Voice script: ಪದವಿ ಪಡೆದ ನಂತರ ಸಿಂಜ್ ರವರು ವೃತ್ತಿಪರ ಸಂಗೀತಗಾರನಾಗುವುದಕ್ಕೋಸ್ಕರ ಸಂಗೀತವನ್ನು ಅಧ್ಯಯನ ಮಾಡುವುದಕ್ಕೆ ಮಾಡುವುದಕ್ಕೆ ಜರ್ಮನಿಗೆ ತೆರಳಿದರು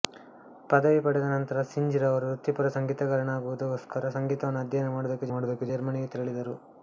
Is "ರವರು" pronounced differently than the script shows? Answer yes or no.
no